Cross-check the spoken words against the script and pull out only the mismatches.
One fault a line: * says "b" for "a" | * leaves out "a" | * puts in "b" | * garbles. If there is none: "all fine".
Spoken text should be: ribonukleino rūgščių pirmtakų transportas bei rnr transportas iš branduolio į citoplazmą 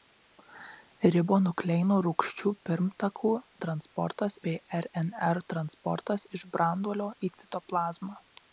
all fine